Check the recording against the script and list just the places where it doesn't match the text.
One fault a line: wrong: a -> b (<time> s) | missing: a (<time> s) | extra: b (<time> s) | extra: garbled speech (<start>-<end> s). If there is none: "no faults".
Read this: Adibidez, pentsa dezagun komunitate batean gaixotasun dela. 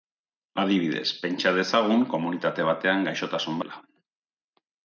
no faults